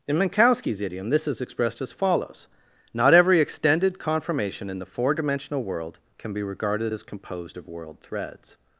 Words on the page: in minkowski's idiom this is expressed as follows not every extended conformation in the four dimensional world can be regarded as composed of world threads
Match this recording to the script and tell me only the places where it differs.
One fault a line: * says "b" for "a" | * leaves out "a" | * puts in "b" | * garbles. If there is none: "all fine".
all fine